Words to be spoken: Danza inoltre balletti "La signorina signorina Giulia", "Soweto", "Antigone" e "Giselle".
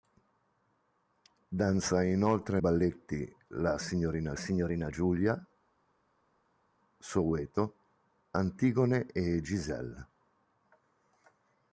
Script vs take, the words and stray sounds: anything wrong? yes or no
no